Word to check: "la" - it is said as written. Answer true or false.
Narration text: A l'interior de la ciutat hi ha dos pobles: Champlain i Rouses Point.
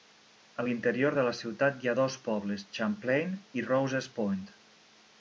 true